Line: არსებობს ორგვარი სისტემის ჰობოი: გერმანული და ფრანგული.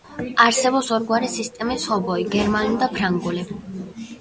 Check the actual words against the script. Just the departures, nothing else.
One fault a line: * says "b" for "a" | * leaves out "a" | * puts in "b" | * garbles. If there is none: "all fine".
all fine